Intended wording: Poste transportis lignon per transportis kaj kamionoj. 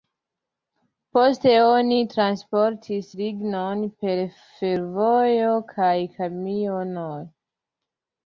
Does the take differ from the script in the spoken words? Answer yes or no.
yes